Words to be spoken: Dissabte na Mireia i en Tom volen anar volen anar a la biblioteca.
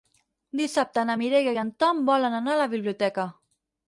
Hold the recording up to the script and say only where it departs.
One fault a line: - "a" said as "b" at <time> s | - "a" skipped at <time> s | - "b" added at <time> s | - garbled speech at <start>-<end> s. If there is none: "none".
- "volen anar" skipped at 2.6 s